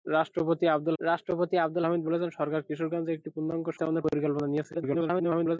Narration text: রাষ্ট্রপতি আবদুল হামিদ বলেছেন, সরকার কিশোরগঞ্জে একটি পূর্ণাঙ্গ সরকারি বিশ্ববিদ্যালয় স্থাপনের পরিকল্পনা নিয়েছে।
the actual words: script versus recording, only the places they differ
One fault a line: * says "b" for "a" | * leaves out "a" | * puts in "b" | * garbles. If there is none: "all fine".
* puts in "রাষ্ট্রপতি আবদুল"
* leaves out "সরকারি বিশ্ববিদ্যালয়"
* garbles